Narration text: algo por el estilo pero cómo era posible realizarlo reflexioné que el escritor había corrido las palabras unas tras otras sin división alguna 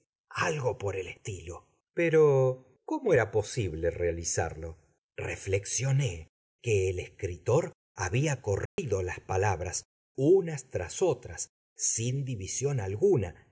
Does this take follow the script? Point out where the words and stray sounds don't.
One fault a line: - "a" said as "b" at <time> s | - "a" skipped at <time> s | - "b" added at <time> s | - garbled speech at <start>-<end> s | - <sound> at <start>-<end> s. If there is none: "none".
- dropout at 8.7-8.8 s